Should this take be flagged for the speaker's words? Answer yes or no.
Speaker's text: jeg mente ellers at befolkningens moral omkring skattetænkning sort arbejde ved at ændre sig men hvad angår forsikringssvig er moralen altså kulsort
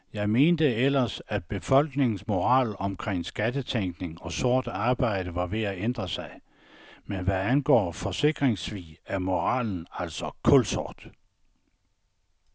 yes